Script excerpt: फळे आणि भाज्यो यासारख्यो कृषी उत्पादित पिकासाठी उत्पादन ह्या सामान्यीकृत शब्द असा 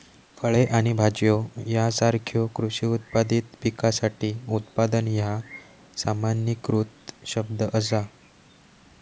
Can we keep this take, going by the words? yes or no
yes